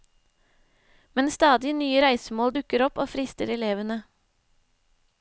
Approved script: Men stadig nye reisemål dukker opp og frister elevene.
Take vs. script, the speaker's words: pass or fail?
pass